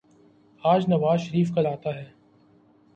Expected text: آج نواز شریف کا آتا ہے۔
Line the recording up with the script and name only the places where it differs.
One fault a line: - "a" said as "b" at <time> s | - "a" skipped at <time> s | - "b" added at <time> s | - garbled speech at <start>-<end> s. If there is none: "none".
none